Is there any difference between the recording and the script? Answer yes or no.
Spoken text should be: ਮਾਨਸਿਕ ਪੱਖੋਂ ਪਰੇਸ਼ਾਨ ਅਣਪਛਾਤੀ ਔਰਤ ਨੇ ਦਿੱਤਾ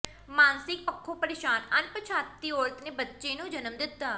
yes